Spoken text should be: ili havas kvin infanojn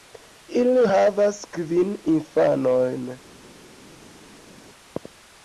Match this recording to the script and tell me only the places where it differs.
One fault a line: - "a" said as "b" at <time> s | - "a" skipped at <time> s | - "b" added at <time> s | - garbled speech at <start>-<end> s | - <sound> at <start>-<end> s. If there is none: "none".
none